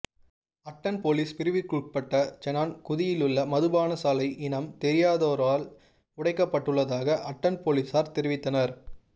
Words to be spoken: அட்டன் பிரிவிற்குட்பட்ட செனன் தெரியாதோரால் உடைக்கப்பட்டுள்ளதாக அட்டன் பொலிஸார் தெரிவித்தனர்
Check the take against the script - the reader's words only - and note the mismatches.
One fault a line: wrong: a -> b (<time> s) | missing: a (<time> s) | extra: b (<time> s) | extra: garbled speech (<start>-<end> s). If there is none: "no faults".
extra: பொலிஸ் (1.0 s)
extra: குதியிலுள்ள மதுபானசாலை இனம் (2.9 s)